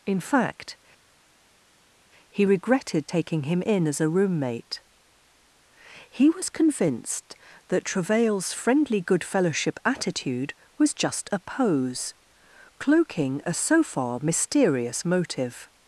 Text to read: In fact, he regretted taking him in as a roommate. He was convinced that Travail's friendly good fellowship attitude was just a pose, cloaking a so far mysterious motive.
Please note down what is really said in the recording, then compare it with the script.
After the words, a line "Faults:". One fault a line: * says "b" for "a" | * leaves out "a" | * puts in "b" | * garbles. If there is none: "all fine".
In fact, he regretted taking him in as a roommate. He was convinced that Travail's friendly good fellowship attitude was just a pose, cloaking a so far mysterious motive.
Faults:
all fine